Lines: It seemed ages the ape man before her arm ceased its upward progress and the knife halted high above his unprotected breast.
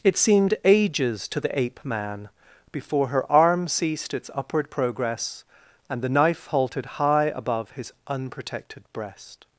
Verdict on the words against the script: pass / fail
fail